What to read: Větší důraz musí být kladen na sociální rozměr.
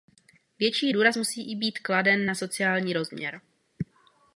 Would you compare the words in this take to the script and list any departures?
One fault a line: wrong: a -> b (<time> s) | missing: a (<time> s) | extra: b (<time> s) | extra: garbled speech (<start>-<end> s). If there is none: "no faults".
no faults